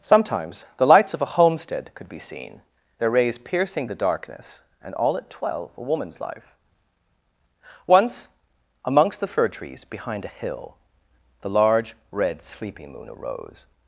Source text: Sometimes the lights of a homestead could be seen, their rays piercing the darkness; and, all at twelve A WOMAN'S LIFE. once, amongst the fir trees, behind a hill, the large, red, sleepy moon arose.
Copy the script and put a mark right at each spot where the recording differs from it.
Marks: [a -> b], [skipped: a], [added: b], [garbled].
Sometimes the lights of a homestead could be seen, their rays piercing the darkness; and, all at twelve A WOMAN'S LIFE. once, amongst the fir trees, behind a hill, the large, red, [sleepy -> sleeping] moon arose.